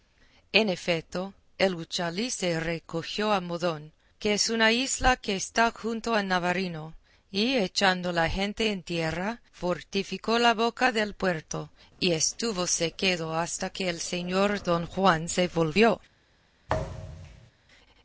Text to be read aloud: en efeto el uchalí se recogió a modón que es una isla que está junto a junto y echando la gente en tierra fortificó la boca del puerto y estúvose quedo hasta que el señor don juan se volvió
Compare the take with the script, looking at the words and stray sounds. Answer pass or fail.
fail